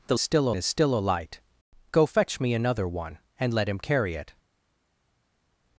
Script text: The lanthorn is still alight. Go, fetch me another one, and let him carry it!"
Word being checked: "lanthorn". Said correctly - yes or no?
no